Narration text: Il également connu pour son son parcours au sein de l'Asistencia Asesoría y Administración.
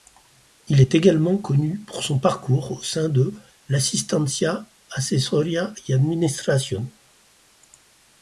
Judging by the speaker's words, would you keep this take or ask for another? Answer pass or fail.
fail